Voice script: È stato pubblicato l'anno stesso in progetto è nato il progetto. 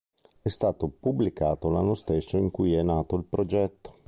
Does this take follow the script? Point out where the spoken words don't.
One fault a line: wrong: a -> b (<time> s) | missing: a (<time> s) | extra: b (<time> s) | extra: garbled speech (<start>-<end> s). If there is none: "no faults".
wrong: progetto -> cui (2.5 s)